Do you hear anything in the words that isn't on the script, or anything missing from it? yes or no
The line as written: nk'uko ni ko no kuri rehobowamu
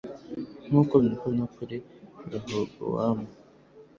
no